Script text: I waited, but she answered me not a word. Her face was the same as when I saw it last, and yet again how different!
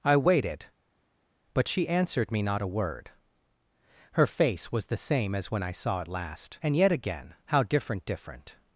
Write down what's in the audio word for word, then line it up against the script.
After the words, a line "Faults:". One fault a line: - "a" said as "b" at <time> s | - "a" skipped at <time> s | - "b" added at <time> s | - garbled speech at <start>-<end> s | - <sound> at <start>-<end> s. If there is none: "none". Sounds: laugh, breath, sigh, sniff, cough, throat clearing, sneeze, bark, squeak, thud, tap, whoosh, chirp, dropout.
I waited, but she answered me not a word. Her face was the same as when I saw it last, and yet again how different different!
Faults:
- "different" added at 8.1 s